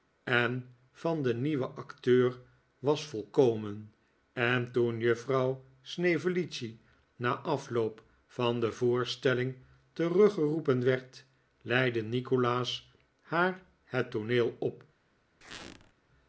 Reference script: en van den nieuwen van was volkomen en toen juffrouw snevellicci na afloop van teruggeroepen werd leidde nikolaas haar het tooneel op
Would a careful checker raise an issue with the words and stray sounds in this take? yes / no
yes